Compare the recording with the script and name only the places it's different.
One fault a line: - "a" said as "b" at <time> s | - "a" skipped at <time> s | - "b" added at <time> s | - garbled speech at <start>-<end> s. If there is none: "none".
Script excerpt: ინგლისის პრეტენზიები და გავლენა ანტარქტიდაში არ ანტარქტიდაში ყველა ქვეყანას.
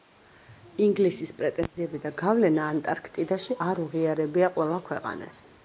- "ანტარქტიდაში" said as "უღიარებია" at 3.9 s